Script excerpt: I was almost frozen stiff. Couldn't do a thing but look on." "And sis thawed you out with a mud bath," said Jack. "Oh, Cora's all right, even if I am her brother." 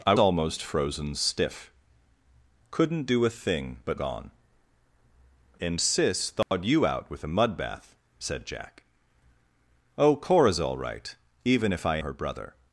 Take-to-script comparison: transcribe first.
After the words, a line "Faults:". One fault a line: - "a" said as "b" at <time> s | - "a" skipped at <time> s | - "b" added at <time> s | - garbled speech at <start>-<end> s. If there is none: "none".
I almost frozen stiff. Couldn't do a thing but on." "And sis thawed you out with a mud bath," said Jack. "Oh, Cora's all right, even if I her brother."
Faults:
- "was" skipped at 0.1 s
- "look" skipped at 4.0 s
- "am" skipped at 12.0 s